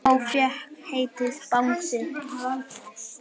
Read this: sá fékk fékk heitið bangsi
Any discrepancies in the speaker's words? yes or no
yes